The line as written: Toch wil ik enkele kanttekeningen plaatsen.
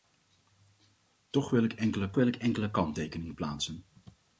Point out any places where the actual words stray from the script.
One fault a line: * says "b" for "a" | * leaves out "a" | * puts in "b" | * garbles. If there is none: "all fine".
* puts in "wil ik enkele"